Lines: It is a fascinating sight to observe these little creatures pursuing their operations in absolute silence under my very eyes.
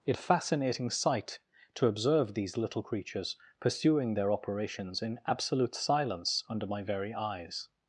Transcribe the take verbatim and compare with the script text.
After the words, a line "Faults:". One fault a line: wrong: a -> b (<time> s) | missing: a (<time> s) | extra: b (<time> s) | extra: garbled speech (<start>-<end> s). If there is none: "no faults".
It a fascinating sight to observe these little creatures pursuing their operations in absolute silence under my very eyes.
Faults:
missing: is (0.2 s)